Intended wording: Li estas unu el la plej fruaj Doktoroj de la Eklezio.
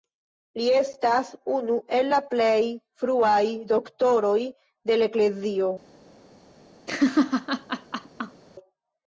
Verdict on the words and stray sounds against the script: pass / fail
fail